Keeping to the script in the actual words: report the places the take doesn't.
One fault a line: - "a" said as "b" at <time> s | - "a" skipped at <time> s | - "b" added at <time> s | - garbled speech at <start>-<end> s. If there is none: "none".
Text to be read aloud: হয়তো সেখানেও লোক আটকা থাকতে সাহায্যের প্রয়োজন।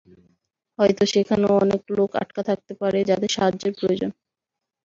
- "অনেক" added at 1.6 s
- "পারে যাদের" added at 2.8 s